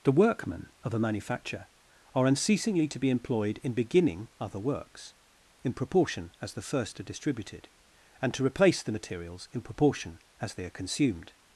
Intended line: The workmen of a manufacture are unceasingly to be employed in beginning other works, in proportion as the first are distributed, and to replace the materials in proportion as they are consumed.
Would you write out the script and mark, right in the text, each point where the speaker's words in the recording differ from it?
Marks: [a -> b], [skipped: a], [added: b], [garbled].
The workmen of a manufacture are unceasingly to be employed in beginning other works, in proportion as the first are distributed, and to replace the materials in proportion as they are consumed.